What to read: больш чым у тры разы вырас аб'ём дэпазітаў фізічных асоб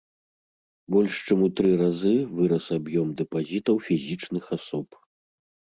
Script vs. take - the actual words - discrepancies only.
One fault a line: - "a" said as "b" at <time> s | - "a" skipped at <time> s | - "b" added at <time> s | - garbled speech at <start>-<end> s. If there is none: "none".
none